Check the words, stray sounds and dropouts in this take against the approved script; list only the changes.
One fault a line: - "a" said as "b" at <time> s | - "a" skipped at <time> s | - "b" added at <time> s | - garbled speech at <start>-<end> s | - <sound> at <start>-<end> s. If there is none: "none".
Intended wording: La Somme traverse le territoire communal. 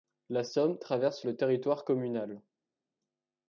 none